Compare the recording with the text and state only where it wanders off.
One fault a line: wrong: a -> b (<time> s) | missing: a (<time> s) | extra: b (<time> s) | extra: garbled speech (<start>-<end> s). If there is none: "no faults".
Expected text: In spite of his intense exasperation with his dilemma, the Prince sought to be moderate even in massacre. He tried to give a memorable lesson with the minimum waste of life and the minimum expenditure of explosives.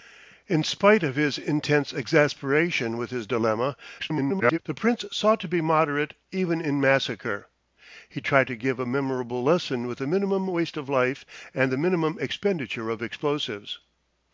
extra: garbled speech (4.0-4.6 s)